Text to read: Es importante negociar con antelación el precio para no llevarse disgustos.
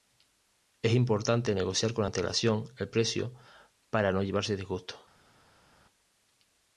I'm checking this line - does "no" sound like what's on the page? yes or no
yes